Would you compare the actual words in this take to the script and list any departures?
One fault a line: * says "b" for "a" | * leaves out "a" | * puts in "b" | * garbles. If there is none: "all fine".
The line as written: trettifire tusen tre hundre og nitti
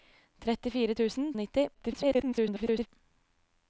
* leaves out "tre hundre"
* garbles